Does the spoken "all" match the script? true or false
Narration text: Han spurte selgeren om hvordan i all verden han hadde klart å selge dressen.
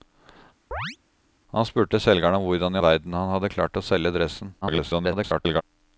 false